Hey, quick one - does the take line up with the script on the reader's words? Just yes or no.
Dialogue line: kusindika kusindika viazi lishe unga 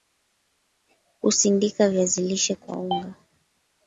no